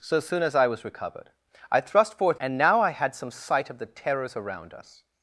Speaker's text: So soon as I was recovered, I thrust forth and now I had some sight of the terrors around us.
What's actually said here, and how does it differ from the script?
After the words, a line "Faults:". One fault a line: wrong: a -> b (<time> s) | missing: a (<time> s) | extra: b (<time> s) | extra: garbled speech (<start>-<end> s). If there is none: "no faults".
So soon as I was recovered, I thrust forth and now I had some sight of the terrors around us.
Faults:
no faults